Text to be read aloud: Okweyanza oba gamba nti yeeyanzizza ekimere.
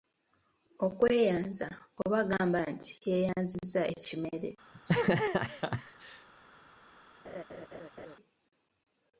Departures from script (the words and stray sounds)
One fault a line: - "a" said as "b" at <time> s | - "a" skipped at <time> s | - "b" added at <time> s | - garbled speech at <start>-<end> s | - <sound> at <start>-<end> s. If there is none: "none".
- laugh at 4.7-6.3 s
- laugh at 7.2-8.2 s